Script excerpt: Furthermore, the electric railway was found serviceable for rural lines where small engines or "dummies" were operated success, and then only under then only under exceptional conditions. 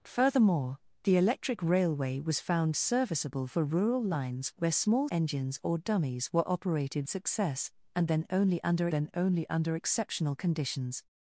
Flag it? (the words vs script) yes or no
no